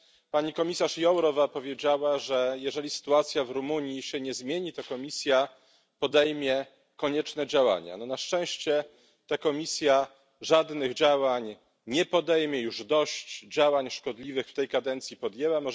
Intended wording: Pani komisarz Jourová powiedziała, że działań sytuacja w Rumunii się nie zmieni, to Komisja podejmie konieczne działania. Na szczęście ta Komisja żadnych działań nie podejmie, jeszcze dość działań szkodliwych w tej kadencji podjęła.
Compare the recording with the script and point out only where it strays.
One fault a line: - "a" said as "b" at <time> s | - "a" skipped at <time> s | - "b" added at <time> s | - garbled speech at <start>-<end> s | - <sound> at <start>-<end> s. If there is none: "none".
- "działań" said as "jeżeli" at 2.6 s
- "jeszcze" said as "już" at 12.6 s